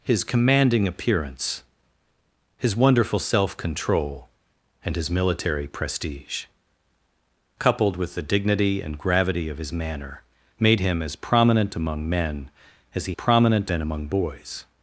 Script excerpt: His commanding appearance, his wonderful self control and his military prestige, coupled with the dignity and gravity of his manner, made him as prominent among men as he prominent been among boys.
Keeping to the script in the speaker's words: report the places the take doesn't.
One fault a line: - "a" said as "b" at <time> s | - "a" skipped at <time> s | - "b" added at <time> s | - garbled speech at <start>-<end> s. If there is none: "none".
none